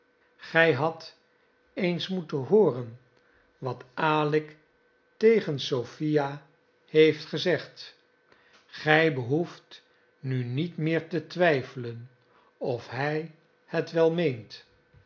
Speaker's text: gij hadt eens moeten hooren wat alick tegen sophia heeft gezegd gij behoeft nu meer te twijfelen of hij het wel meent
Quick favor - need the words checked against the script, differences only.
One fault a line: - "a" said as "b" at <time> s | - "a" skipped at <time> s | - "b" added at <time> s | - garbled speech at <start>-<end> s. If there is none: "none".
- "niet" added at 10.4 s